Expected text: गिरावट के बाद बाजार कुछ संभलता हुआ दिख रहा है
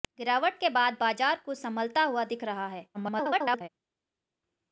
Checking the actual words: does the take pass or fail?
fail